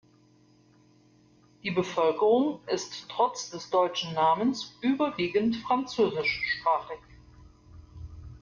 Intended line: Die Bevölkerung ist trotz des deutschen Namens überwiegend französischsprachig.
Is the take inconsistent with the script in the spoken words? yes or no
no